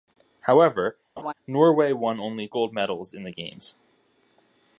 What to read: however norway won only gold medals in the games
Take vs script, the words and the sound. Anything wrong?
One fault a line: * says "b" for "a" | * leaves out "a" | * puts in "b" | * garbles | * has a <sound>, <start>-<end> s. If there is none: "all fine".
* has a laugh, 1.2-1.3 s